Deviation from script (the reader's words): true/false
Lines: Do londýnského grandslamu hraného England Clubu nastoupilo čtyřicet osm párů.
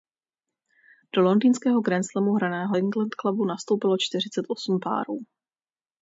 false